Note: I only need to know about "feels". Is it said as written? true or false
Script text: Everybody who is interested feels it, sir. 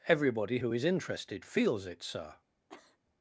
true